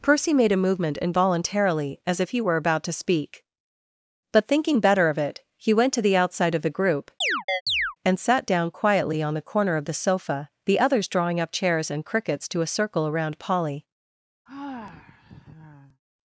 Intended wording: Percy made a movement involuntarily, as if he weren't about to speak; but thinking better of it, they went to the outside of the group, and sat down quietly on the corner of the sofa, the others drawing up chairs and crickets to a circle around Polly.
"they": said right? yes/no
no